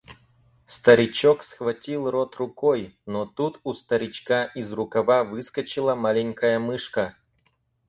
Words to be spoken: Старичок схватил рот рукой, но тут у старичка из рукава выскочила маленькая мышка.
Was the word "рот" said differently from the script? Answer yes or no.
no